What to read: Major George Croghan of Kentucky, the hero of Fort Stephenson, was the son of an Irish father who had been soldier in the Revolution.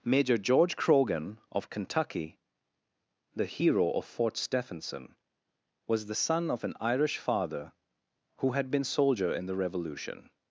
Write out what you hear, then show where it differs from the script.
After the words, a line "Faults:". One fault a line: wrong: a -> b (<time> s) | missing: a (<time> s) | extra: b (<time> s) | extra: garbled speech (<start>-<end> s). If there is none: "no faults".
Major George Croghan of Kentucky, the hero of Fort Stephenson, was the son of an Irish father who had been soldier in the Revolution.
Faults:
no faults